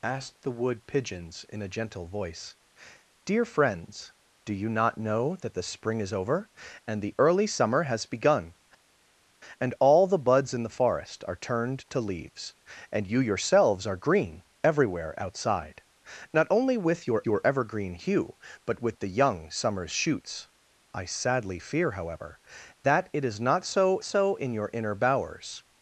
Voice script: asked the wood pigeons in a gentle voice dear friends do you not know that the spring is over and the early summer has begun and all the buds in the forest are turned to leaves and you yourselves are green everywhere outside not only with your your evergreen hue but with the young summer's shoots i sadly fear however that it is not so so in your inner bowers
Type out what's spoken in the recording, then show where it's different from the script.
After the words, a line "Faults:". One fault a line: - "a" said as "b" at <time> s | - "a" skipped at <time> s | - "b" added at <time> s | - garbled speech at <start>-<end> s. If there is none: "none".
asked the wood pigeons in a gentle voice dear friends do you not know that the spring is over and the early summer has begun and all the buds in the forest are turned to leaves and you yourselves are green everywhere outside not only with your your evergreen hue but with the young summer's shoots i sadly fear however that it is not so so in your inner bowers
Faults:
none